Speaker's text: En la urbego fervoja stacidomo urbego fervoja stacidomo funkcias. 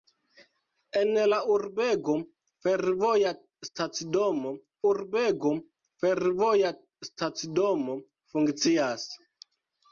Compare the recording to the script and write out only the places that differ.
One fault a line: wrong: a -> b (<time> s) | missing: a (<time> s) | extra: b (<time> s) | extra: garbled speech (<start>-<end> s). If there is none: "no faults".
no faults